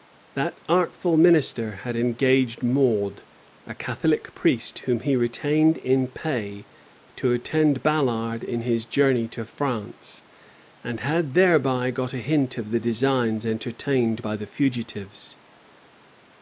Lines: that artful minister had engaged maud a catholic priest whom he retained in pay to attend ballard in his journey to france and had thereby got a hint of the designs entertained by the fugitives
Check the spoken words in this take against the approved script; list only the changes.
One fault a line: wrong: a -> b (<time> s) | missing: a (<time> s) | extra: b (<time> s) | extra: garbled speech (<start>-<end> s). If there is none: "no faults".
no faults